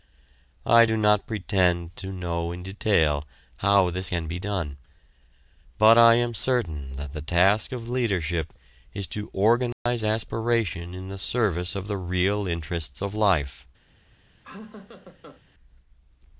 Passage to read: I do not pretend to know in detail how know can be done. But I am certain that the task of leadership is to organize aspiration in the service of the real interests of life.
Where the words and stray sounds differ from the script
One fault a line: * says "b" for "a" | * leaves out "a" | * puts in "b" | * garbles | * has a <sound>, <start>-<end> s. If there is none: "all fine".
* says "this" for "know"
* has a dropout, 9.7-9.9 s
* has a laugh, 14.4-15.4 s